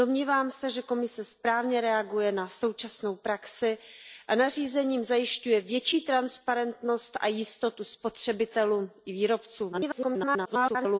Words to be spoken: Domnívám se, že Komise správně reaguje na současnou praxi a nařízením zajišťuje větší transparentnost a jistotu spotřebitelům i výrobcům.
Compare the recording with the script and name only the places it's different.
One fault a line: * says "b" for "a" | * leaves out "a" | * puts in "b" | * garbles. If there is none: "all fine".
* garbles